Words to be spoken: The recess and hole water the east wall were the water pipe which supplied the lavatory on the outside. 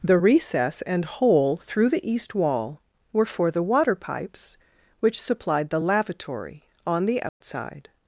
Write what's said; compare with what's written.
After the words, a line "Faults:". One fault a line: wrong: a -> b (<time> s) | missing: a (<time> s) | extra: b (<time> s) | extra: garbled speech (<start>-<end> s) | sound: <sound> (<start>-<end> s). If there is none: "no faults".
The recess and hole through the east wall were for the water pipes which supplied the lavatory on the outside.
Faults:
wrong: water -> through (1.6 s)
extra: for (3.3 s)
wrong: pipe -> pipes (3.9 s)
sound: dropout (7.3-7.4 s)